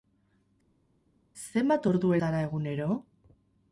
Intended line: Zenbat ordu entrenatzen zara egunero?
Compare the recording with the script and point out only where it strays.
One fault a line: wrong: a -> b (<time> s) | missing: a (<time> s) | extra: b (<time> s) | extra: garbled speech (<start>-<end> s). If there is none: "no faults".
missing: entrenatzen (2.1 s)